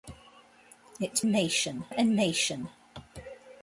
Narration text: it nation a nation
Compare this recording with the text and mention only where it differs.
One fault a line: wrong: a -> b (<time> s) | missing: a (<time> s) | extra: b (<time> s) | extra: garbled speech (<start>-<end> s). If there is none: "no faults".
no faults